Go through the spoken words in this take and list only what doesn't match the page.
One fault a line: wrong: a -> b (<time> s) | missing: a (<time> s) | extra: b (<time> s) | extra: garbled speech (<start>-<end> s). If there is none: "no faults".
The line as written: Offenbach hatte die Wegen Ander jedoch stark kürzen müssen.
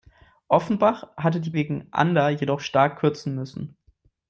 no faults